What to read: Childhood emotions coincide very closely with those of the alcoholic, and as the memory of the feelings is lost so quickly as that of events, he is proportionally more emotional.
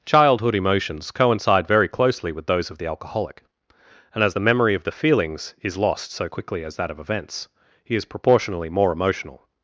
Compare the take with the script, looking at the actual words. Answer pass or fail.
pass